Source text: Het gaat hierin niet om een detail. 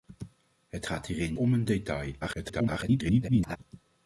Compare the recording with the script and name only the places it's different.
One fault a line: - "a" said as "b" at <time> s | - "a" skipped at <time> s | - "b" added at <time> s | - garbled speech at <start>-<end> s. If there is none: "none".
- "niet" skipped at 1.4 s
- garbled speech at 2.2-3.6 s